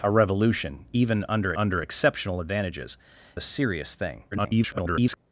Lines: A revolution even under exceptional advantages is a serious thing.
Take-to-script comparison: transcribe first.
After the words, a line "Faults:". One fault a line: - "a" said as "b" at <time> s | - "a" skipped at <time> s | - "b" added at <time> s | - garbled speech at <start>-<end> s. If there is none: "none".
A revolution even under under exceptional advantages a serious thing. [garbled]
Faults:
- "under" added at 1.6 s
- "is" skipped at 3.0 s
- garbled speech at 4.3-5.2 s